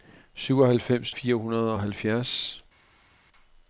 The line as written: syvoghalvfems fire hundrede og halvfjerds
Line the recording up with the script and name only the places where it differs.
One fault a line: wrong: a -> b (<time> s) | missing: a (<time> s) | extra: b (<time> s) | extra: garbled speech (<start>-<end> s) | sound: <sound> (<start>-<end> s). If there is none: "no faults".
no faults